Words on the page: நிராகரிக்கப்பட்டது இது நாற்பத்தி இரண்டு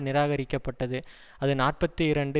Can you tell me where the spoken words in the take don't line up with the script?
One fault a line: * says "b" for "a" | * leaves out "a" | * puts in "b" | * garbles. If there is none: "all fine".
* says "அது" for "இது"